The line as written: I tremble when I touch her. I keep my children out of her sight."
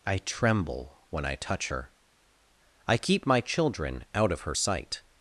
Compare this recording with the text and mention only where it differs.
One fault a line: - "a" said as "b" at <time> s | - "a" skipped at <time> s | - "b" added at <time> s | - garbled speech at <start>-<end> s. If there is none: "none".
none